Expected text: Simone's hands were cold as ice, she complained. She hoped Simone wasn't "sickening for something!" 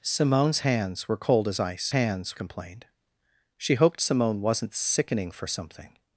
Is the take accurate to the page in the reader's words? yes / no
no